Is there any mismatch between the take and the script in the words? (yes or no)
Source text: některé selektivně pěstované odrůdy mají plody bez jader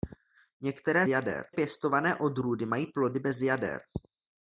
yes